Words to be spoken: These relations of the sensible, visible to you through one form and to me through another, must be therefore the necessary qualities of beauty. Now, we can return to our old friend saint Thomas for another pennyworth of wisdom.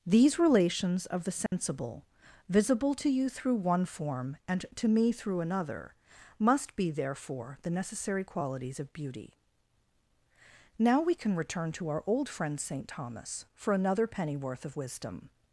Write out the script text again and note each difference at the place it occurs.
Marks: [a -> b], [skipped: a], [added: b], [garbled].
These relations of the sensible, visible to you through one form and to me through another, must be therefore the necessary qualities of beauty. Now, we can return to our old friend saint Thomas for another pennyworth of wisdom.